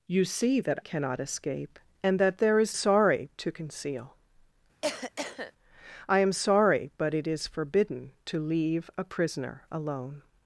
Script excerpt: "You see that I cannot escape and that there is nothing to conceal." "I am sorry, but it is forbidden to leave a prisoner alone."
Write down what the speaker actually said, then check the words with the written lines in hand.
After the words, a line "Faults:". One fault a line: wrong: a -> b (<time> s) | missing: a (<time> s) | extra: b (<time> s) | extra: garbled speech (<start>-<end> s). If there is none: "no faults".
"You see that cannot escape and that there is sorry to conceal." "I am sorry, but it is forbidden to leave a prisoner alone."
Faults:
missing: I (0.8 s)
wrong: nothing -> sorry (2.7 s)